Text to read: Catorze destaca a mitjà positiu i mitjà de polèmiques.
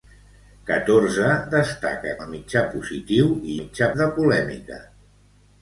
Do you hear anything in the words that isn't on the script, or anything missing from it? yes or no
no